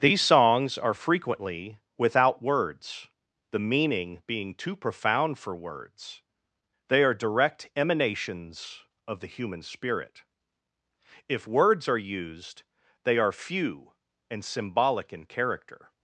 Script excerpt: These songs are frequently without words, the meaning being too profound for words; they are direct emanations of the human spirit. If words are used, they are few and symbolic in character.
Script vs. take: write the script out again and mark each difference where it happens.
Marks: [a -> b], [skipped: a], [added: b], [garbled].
These songs are frequently without words, the meaning being too profound for words; they are direct emanations of the human spirit. If words are used, they are few and symbolic in character.